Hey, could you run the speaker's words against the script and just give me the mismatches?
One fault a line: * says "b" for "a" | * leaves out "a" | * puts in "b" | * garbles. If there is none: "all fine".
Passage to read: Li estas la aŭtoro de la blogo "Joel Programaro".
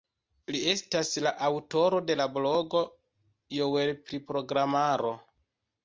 * puts in "pri"